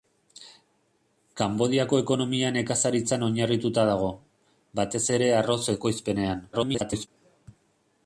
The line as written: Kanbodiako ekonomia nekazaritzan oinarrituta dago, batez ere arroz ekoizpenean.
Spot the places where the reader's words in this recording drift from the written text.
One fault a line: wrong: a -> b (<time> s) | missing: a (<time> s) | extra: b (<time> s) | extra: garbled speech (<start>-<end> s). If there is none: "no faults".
extra: garbled speech (6.5-7.1 s)